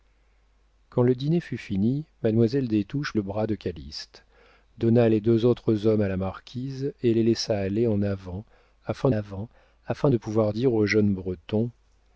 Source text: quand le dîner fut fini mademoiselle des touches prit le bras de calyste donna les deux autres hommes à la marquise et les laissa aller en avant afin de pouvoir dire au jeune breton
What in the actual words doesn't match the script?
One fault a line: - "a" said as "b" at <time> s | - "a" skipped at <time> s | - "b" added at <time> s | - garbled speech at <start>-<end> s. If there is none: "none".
- "prit" skipped at 3.1 s
- "avant afin" added at 9.1 s